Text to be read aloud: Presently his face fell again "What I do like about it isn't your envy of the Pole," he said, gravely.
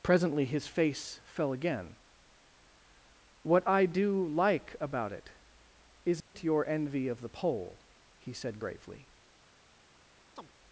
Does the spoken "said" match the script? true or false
true